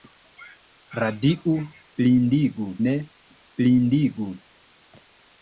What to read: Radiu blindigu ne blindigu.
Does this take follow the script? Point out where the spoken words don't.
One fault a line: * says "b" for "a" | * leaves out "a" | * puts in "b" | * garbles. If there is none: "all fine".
all fine